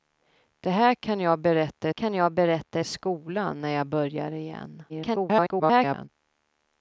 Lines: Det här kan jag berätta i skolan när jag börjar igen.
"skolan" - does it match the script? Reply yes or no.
yes